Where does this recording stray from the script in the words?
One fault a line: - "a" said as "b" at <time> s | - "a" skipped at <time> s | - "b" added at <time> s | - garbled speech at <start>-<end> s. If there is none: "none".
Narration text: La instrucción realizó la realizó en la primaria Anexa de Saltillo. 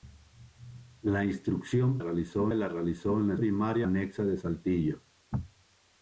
none